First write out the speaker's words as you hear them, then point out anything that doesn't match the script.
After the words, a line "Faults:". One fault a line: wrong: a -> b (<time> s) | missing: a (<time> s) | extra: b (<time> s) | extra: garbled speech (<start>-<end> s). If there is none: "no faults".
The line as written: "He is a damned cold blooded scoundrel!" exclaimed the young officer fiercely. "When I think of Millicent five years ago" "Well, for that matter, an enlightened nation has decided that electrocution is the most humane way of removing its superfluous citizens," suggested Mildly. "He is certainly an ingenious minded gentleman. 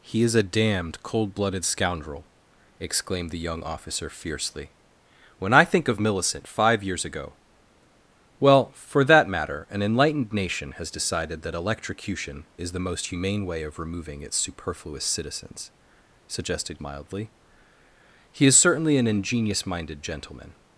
"He is a damned cold blooded scoundrel!" exclaimed the young officer fiercely. "When I think of Millicent five years ago" "Well, for that matter, an enlightened nation has decided that electrocution is the most humane way of removing its superfluous citizens," suggested Mildly. "He is certainly an ingenious minded gentleman.
Faults:
no faults